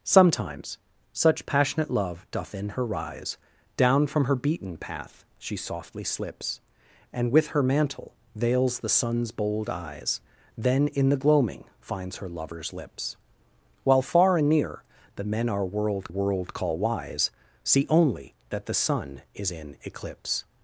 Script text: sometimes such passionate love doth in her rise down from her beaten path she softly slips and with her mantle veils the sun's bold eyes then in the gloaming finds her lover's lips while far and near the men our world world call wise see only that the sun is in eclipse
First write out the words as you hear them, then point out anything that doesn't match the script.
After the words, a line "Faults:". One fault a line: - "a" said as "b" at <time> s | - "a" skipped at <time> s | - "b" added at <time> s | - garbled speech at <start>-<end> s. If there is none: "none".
sometimes such passionate love doth in her rise down from her beaten path she softly slips and with her mantle veils the sun's bold eyes then in the gloaming finds her lover's lips while far and near the men our world world call wise see only that the sun is in eclipse
Faults:
none